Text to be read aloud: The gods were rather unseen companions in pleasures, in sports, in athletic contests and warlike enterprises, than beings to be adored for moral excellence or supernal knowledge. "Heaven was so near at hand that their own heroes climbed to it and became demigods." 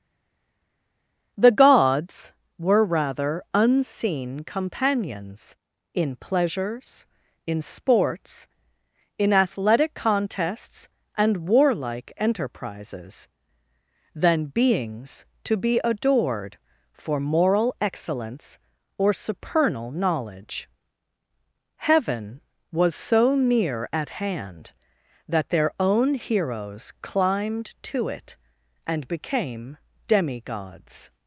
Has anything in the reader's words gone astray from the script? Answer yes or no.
no